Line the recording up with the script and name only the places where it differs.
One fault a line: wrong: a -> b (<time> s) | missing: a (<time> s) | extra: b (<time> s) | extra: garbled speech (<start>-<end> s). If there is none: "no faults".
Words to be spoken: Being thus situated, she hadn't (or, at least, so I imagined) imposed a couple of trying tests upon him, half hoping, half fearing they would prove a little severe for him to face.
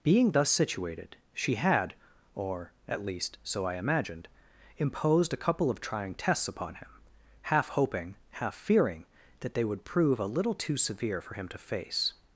wrong: hadn't -> had (1.6 s)
extra: that (9.4 s)
extra: too (10.6 s)